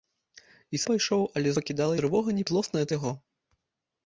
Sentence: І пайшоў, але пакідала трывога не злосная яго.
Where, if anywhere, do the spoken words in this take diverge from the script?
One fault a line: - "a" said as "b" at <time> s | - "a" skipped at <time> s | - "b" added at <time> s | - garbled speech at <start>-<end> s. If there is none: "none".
none